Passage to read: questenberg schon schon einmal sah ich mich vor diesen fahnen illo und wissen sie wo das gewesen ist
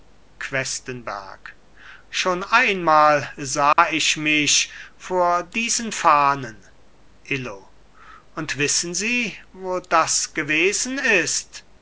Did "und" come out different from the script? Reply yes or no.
no